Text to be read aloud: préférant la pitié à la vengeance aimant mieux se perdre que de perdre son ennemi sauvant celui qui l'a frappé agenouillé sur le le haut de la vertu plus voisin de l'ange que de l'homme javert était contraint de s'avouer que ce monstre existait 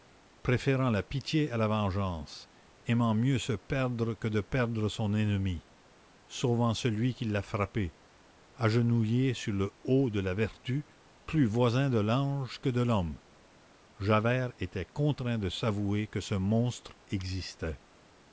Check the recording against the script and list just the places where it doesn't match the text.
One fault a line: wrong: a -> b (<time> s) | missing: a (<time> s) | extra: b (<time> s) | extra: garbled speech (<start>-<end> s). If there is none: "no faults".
missing: le (9.7 s)